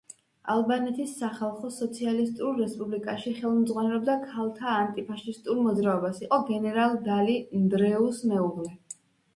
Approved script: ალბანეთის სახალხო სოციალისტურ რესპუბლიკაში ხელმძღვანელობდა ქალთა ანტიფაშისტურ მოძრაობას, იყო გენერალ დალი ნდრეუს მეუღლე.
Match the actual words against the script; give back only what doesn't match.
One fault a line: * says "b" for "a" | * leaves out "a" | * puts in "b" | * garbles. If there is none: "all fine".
all fine